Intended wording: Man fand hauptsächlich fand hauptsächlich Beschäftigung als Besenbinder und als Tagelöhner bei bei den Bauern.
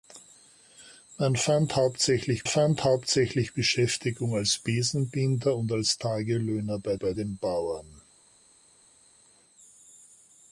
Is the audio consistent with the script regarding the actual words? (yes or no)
yes